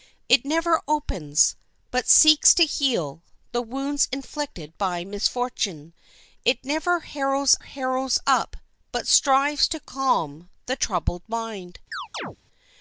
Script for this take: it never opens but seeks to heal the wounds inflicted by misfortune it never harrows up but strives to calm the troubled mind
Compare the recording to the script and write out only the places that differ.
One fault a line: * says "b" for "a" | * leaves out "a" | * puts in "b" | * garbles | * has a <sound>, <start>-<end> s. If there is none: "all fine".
* puts in "harrows"
* has a chirp, 11.9-12.4 s